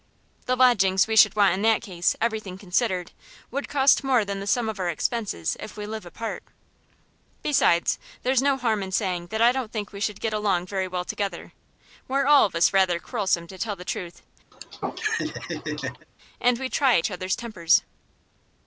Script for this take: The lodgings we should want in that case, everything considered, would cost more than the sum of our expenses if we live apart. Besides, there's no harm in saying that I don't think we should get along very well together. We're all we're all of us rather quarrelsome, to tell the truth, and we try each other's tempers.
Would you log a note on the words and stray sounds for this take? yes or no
yes